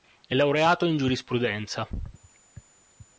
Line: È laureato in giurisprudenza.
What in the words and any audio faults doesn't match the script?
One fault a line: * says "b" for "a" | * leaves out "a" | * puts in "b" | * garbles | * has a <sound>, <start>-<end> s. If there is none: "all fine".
all fine